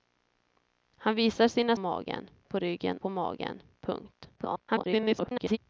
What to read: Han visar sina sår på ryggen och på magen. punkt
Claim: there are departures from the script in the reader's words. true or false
true